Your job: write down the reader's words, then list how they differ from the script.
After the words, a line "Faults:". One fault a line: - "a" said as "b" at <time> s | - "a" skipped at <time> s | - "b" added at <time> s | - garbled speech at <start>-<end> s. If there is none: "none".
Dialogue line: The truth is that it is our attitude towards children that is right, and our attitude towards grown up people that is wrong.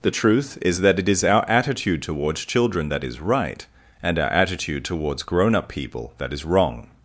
The truth is that it is our attitude towards children that is right, and our attitude towards grown up people that is wrong.
Faults:
none